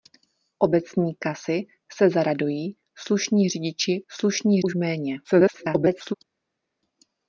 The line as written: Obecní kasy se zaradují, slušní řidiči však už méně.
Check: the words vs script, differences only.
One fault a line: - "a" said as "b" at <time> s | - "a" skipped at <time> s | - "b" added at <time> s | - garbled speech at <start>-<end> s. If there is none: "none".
- "však" said as "slušní" at 4.1 s
- garbled speech at 5.2-6.1 s